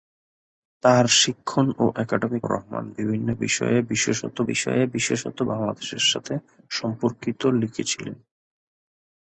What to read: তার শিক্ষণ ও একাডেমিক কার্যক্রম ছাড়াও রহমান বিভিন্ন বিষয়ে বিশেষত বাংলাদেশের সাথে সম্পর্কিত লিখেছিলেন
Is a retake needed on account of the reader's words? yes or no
yes